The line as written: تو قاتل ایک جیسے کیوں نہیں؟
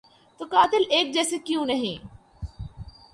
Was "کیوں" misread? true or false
false